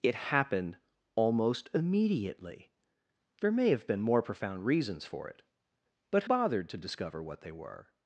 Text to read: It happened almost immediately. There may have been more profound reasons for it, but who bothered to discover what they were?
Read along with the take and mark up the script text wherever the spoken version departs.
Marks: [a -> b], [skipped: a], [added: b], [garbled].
It happened almost immediately. There may have been more profound reasons for it, but [skipped: who] bothered to discover what they were?